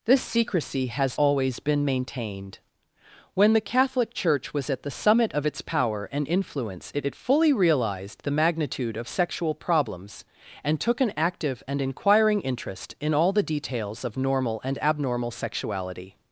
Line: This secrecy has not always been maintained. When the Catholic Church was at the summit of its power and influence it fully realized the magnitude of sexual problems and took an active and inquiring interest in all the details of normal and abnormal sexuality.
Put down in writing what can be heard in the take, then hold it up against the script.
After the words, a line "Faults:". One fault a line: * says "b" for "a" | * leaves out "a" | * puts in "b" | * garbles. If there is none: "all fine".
This secrecy has always been maintained. When the Catholic Church was at the summit of its power and influence it it fully realized the magnitude of sexual problems and took an active and inquiring interest in all the details of normal and abnormal sexuality.
Faults:
* leaves out "not"
* puts in "it"